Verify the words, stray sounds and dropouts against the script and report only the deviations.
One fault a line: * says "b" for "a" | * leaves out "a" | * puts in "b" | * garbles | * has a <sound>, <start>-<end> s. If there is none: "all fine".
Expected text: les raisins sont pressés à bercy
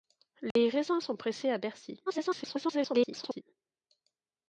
* has a dropout, 0.5-0.6 s
* garbles